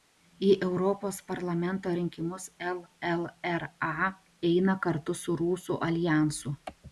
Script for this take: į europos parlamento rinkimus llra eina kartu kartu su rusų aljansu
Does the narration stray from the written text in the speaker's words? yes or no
yes